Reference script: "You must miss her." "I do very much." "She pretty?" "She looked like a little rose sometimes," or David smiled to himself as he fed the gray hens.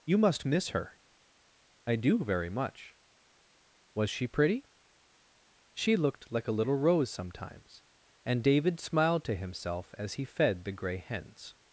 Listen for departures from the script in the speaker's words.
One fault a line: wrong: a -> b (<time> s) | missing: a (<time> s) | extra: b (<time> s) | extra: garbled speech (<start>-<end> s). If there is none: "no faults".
extra: Was (3.9 s)
wrong: or -> and (8.2 s)